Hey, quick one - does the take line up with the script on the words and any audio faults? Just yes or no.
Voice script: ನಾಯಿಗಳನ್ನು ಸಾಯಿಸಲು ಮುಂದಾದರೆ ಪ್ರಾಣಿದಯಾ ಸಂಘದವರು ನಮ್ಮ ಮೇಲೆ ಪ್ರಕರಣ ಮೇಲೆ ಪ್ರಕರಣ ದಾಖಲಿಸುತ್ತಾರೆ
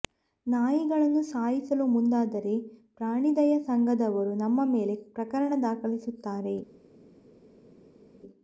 no